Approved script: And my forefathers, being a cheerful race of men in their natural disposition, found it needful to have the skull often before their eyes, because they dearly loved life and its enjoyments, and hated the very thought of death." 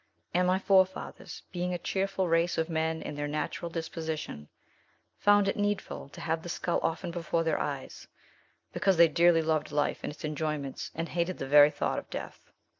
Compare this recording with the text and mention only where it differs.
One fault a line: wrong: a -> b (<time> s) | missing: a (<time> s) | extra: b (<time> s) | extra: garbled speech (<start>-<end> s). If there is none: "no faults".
no faults